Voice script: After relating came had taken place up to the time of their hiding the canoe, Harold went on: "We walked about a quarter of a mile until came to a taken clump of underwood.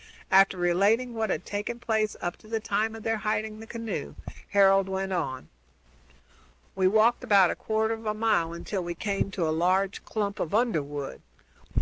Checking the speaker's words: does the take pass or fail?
fail